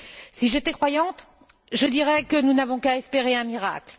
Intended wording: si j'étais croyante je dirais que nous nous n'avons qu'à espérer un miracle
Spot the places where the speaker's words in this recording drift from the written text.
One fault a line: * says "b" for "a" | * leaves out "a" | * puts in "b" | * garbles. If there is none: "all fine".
* leaves out "nous"